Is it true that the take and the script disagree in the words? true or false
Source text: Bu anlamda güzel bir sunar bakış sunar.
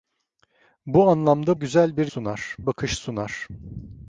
false